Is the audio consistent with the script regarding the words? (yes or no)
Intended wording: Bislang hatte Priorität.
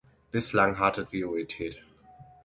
yes